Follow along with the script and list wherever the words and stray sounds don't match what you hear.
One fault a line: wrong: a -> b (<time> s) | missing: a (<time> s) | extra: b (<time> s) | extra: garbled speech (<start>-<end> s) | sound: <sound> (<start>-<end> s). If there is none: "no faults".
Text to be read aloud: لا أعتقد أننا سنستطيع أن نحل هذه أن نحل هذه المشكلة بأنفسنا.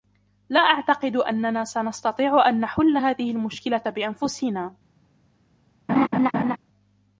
missing: أن نحل هذه (3.3 s)
sound: laugh (5.9-6.6 s)